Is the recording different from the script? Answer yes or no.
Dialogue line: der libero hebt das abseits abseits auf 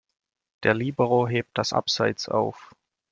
yes